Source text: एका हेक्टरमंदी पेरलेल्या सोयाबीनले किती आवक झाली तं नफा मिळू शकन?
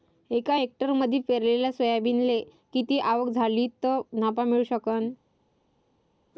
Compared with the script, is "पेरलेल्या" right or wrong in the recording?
right